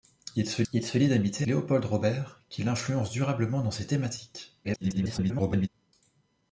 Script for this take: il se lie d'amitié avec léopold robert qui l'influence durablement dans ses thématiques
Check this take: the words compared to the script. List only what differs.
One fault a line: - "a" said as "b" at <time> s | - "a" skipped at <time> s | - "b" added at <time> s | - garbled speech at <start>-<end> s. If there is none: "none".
- "il se" added at 0.7 s
- "avec" skipped at 1.5 s
- garbled speech at 4.6-5.7 s